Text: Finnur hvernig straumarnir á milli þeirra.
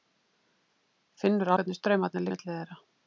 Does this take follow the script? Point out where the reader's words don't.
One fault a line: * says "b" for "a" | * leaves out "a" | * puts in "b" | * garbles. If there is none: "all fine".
all fine